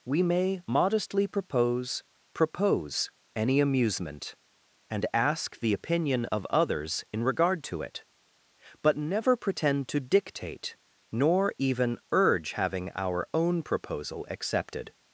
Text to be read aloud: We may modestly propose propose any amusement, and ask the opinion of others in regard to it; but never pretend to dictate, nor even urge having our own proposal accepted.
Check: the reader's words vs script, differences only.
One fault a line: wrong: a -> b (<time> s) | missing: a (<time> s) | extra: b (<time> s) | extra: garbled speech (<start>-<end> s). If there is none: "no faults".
no faults